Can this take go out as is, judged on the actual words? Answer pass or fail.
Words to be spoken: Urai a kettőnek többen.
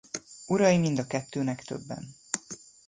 fail